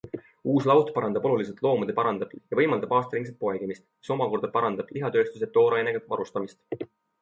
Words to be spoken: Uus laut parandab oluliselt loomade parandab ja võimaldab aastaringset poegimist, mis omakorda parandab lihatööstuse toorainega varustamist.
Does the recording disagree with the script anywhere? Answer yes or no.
no